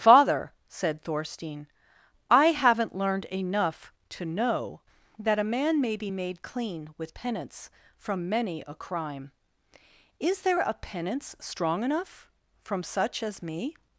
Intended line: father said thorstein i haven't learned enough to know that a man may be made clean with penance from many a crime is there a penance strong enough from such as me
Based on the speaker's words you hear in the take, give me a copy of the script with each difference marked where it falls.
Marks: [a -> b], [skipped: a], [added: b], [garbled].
father said thorstein i haven't learned enough to know that a man may be made clean with penance from many a crime is there a penance strong enough from such as me